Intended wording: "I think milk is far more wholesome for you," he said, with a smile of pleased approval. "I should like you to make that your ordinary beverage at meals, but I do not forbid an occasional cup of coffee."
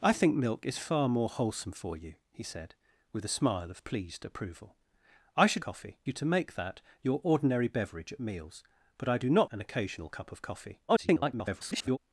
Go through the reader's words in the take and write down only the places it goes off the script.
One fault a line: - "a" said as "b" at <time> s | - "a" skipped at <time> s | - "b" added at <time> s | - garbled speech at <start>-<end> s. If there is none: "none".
- "like" said as "coffee" at 5.6 s
- "forbid" skipped at 9.5 s
- garbled speech at 10.9-12.0 s